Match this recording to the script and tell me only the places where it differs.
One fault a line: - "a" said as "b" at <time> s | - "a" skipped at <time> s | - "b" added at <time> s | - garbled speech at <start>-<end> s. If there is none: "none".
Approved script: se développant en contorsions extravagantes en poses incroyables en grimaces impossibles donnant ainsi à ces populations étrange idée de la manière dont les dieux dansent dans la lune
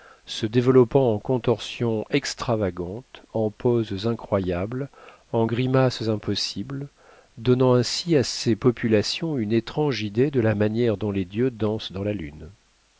- "une" added at 9.4 s